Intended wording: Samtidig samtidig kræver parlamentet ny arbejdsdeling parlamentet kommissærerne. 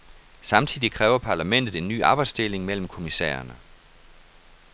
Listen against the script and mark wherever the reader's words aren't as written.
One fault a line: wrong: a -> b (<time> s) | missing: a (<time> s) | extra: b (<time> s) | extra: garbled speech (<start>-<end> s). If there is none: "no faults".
missing: samtidig (0.9 s)
extra: en (1.7 s)
wrong: parlamentet -> mellem (2.7 s)